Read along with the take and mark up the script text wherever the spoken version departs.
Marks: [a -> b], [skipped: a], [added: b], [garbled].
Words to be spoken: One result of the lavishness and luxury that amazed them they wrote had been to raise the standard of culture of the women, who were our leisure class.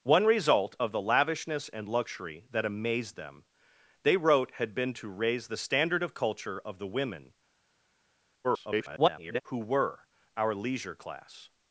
One result of the lavishness and luxury that amazed them they wrote had been to raise the standard of culture of the women, [garbled] who were our leisure class.